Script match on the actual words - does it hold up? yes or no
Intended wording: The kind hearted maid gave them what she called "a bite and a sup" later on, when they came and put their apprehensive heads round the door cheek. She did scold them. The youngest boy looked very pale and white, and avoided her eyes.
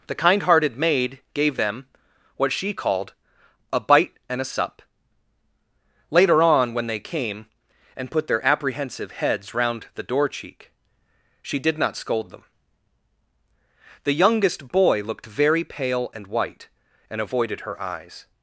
no